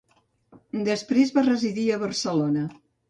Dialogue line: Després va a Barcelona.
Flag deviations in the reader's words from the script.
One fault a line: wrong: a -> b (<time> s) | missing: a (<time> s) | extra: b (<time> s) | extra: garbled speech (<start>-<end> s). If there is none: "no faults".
extra: residir (1.5 s)